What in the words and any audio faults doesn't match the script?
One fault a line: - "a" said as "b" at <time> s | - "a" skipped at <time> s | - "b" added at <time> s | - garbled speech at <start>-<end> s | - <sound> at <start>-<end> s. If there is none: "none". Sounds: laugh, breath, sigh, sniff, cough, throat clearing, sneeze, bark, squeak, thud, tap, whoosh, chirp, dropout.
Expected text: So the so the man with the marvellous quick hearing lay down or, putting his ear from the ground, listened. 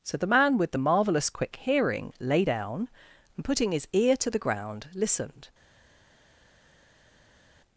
- "so the" skipped at 0.3 s
- "or" said as "and" at 3.3 s
- "from" said as "to" at 4.2 s